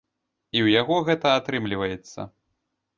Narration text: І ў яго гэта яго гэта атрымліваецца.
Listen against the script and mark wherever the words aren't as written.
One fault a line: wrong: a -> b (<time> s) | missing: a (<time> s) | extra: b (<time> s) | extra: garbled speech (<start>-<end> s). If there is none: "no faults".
missing: яго гэта (1.4 s)